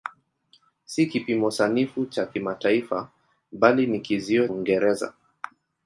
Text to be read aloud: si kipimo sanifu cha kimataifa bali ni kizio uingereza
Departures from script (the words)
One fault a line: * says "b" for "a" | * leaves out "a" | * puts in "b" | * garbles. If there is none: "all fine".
all fine